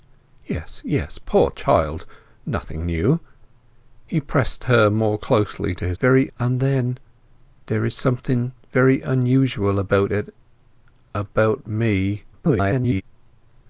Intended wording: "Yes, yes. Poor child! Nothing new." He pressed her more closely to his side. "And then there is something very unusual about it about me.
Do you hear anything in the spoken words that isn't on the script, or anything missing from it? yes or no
yes